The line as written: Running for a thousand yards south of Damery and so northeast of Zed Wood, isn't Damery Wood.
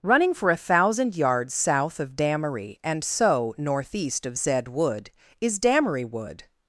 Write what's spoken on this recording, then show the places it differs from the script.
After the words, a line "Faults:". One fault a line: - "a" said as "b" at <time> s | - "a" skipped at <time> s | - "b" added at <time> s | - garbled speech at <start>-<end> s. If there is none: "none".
Running for a thousand yards south of Damery and so northeast of Zed Wood, is Damery Wood.
Faults:
- "isn't" said as "is" at 5.4 s